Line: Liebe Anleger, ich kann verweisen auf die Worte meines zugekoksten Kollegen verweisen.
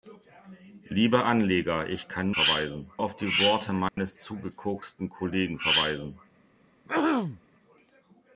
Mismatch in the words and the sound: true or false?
true